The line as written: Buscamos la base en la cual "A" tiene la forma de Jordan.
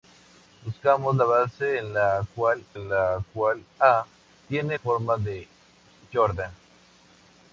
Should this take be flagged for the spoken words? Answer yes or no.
yes